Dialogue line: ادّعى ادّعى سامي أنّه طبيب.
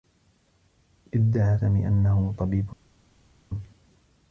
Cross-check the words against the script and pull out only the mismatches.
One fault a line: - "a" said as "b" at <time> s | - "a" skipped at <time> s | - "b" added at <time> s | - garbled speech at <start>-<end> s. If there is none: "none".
- "ادّعى" skipped at 1.6 s